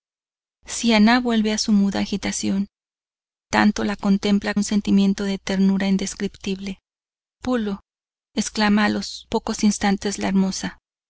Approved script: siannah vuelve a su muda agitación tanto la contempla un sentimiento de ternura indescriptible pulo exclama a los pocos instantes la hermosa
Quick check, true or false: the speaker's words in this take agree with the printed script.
true